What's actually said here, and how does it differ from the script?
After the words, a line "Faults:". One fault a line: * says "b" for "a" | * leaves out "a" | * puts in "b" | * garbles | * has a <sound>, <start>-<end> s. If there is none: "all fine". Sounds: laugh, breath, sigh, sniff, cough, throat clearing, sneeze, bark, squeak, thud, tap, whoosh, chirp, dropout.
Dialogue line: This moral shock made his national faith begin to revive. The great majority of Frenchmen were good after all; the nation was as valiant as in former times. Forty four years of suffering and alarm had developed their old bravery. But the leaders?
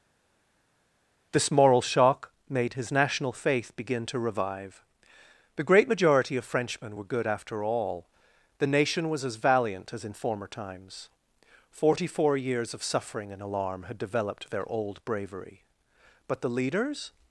This moral shock made his national faith begin to revive. The great majority of Frenchmen were good after all; the nation was as valiant as in former times. Forty four years of suffering and alarm had developed their old bravery. But the leaders?
Faults:
all fine